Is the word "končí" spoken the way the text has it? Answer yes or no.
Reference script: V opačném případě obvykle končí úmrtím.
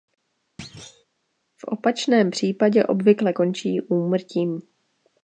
yes